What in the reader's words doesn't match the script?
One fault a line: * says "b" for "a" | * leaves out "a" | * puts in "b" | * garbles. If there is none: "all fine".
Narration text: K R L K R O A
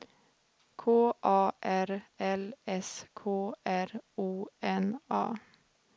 * puts in "A"
* puts in "S"
* puts in "N"